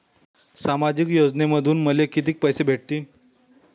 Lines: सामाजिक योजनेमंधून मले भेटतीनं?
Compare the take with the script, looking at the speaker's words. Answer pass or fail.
fail